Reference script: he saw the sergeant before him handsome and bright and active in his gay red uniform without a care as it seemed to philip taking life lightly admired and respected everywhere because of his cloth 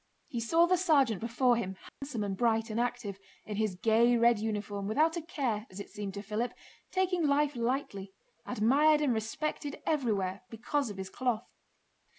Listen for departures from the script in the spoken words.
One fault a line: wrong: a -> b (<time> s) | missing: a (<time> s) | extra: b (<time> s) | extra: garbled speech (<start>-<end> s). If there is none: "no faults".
no faults